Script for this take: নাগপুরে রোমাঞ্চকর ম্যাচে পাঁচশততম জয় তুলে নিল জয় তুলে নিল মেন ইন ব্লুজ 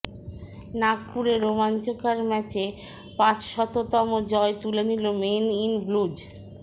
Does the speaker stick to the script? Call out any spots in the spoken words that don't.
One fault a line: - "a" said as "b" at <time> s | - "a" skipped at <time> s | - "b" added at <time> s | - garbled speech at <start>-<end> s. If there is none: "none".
- "জয় তুলে নিল" skipped at 5.0 s